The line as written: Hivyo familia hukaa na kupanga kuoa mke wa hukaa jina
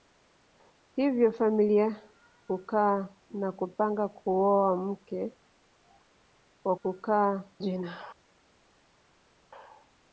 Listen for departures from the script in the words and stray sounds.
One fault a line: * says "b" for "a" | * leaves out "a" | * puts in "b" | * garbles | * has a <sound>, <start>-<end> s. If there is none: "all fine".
all fine